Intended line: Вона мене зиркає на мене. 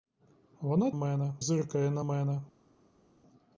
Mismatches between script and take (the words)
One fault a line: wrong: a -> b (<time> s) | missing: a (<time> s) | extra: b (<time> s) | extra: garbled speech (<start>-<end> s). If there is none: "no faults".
no faults